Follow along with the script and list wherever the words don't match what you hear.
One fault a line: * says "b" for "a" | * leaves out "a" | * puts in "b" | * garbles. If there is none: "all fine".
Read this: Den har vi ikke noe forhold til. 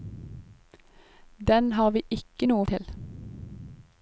* leaves out "forhold"